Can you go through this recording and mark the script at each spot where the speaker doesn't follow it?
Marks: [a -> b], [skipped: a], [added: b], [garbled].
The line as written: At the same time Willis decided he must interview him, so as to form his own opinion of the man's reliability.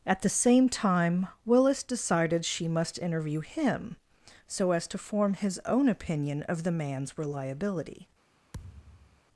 At the same time Willis decided [he -> she] must interview him, so as to form his own opinion of the man's reliability.